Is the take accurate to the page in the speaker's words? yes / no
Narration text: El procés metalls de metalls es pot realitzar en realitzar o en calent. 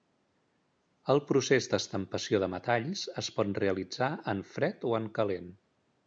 no